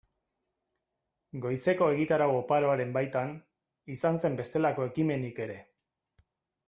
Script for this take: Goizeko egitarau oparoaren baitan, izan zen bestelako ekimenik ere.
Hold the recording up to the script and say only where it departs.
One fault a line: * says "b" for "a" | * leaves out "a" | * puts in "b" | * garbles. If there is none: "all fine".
all fine